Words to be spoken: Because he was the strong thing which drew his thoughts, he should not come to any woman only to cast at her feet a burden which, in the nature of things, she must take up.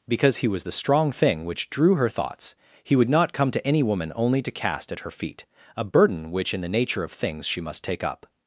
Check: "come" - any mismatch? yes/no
no